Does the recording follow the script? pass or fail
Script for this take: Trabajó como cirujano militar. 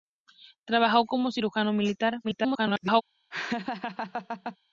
fail